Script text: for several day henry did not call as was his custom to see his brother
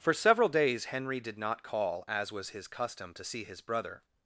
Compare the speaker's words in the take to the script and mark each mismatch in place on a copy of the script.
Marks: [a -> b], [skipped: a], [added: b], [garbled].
for several [day -> days] henry did not call as was his custom to see his brother